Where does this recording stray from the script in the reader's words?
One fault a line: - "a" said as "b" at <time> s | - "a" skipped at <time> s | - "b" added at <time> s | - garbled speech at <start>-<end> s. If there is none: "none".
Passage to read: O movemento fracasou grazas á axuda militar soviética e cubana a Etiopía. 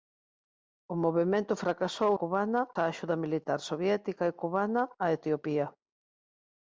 - "grazas" said as "cubana" at 2.2 s